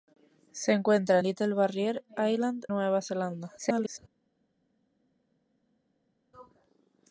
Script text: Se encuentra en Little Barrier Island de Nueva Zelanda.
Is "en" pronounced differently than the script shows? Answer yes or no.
yes